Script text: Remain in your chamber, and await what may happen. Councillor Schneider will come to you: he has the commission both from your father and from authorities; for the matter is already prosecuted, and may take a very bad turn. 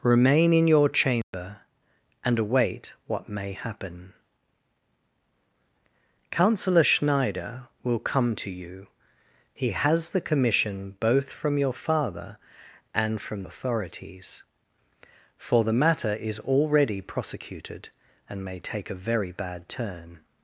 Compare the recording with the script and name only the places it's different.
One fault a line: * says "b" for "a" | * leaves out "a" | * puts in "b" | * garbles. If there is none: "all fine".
all fine